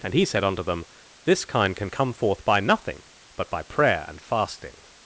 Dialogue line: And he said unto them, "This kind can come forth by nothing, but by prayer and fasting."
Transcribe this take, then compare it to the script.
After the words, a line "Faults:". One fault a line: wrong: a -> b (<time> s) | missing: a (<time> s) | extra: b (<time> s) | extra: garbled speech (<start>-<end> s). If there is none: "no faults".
And he said unto them, "This kind can come forth by nothing, but by prayer and fasting."
Faults:
no faults